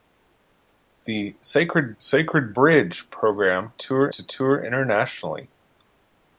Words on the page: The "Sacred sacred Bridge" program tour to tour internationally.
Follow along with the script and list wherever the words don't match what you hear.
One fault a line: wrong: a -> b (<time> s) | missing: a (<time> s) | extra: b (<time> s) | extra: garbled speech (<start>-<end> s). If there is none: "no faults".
no faults